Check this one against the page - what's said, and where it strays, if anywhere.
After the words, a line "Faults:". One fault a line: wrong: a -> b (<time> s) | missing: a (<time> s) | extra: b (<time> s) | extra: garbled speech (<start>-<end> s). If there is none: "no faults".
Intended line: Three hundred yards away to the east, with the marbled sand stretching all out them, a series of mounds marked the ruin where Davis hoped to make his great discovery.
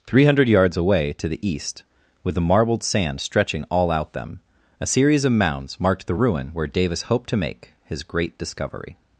Three hundred yards away to the east, with the marbled sand stretching all out them, a series of mounds marked the ruin where Davis hoped to make his great discovery.
Faults:
no faults